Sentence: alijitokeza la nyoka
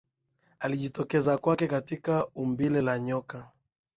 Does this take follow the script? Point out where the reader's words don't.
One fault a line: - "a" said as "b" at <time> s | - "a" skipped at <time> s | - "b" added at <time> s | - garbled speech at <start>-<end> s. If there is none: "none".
- "kwake katika umbile" added at 1.4 s